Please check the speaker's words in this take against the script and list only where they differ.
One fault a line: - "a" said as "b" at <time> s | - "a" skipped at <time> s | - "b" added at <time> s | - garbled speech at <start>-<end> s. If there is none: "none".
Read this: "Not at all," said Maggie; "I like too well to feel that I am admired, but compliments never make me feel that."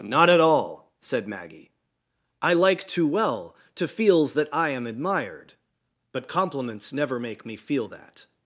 - "feel" said as "feels" at 3.9 s